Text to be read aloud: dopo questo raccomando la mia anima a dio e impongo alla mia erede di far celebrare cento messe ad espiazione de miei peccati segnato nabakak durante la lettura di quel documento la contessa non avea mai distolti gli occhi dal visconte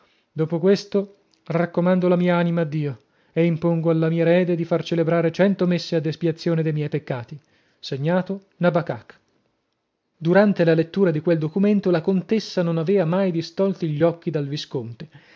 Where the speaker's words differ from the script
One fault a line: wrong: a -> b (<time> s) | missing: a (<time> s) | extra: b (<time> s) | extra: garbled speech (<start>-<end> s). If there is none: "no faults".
no faults